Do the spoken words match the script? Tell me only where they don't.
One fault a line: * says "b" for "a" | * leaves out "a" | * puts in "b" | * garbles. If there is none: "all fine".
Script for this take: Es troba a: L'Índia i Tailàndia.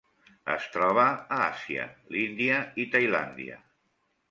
* puts in "Àsia"